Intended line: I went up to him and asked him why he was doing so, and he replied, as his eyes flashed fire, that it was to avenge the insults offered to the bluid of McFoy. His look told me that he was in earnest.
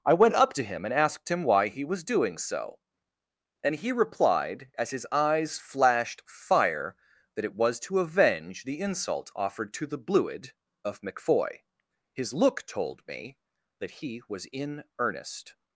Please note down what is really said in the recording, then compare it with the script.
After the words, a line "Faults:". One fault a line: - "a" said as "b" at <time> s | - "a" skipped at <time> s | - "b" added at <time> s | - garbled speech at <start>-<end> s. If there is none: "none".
I went up to him and asked him why he was doing so, and he replied, as his eyes flashed fire, that it was to avenge the insult offered to the bluid of McFoy. His look told me that he was in earnest.
Faults:
- "insults" said as "insult" at 8.8 s